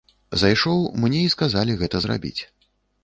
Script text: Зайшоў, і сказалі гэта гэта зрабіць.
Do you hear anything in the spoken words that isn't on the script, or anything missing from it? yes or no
yes